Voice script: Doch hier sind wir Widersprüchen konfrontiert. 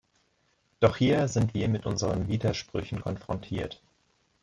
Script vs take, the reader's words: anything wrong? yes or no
yes